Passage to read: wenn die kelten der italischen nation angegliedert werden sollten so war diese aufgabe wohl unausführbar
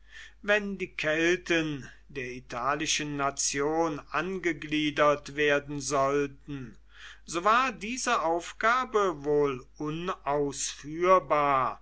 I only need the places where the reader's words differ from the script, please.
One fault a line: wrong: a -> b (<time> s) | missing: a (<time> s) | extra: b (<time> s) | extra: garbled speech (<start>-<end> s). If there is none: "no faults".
no faults